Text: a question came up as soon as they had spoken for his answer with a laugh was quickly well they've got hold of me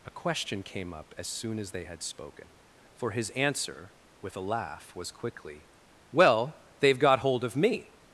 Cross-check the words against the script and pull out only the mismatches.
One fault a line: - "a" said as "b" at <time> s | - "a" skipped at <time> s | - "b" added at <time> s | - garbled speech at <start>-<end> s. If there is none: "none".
none